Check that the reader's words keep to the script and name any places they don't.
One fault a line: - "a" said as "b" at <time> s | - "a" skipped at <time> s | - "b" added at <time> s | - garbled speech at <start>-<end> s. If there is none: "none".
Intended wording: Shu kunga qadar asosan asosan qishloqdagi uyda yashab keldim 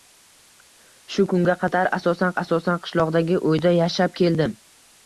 none